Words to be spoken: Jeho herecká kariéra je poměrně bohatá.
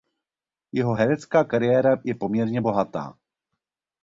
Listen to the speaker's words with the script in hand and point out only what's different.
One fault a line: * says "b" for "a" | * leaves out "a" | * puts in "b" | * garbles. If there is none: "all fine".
all fine